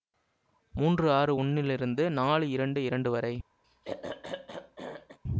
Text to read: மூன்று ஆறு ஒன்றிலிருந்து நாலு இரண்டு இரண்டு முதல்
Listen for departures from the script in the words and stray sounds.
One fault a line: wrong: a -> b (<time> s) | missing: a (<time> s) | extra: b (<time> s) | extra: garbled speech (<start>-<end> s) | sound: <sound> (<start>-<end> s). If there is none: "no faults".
wrong: முதல் -> வரை (3.1 s)
sound: throat clearing (3.6-5.2 s)